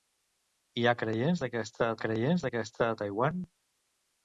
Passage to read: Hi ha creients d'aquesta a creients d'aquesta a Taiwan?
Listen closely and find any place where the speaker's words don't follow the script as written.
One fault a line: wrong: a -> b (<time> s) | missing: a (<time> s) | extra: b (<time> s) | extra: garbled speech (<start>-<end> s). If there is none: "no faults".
no faults